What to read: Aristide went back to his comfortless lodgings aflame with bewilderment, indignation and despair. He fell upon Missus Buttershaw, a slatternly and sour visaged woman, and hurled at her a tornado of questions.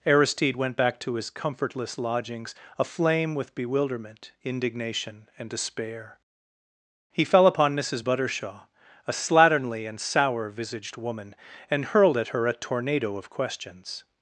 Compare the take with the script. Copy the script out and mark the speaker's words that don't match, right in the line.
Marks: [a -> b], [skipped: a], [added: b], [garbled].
Aristide went back to his comfortless lodgings aflame with bewilderment, indignation and despair. He fell upon Missus Buttershaw, a slatternly and sour visaged woman, and hurled at her a tornado of questions.